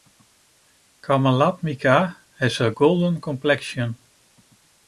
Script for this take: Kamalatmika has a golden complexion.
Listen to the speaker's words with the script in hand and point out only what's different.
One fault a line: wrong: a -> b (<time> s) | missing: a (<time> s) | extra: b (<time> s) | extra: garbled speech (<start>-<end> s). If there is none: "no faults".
no faults